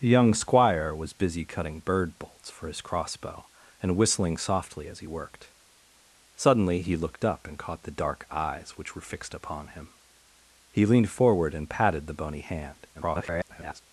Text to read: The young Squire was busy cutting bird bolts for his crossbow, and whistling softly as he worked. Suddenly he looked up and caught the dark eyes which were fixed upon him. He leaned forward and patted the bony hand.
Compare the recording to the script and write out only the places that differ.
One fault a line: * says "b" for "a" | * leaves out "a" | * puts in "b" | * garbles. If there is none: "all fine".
* garbles